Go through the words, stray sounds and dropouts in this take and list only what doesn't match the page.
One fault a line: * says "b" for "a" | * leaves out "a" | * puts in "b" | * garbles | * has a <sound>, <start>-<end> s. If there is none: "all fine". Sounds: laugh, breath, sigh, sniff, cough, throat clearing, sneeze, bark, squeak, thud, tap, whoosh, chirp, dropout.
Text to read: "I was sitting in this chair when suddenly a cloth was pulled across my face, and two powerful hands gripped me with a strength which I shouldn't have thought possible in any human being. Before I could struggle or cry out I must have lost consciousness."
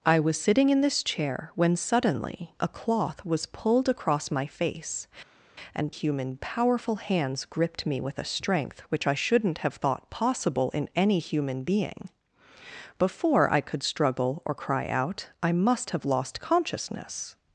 * says "human" for "two"